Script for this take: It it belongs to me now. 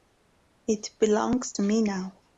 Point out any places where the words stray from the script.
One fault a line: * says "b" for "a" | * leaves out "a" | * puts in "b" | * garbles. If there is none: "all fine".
* leaves out "it"